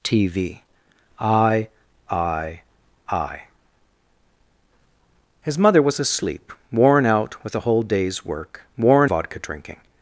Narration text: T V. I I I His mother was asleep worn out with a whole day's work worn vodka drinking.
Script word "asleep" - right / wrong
right